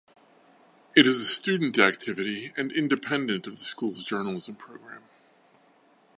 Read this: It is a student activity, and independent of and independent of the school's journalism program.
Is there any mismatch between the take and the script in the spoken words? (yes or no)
yes